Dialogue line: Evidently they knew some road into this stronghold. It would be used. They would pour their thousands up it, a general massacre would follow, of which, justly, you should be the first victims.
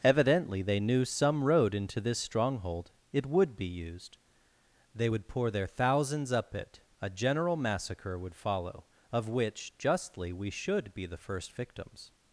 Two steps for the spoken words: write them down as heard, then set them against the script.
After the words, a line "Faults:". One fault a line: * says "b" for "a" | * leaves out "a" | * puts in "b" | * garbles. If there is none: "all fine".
Evidently they knew some road into this stronghold. It would be used. They would pour their thousands up it, a general massacre would follow, of which, justly, we should be the first victims.
Faults:
* says "we" for "you"